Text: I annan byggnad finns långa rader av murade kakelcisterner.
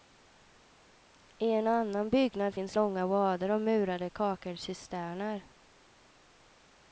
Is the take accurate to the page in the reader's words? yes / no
no